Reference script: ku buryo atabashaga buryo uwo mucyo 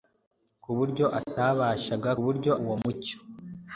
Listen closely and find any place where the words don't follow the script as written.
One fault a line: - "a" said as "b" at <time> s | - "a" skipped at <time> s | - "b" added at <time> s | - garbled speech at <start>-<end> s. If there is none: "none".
none